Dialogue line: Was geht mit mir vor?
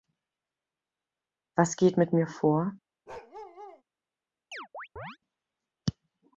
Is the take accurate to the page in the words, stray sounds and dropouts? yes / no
no